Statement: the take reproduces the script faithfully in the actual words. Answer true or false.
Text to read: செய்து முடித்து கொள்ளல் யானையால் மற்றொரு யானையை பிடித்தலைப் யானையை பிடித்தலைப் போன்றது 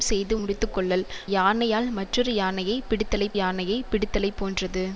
true